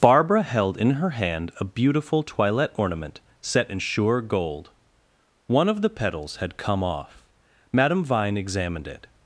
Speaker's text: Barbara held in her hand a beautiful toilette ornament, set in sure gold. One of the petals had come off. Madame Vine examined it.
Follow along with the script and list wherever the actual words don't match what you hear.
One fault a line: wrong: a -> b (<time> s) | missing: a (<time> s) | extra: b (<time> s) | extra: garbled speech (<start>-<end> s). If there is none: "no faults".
no faults